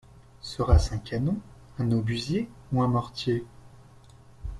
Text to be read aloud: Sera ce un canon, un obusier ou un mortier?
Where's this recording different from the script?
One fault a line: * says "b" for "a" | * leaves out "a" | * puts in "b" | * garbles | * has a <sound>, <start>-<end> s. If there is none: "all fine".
all fine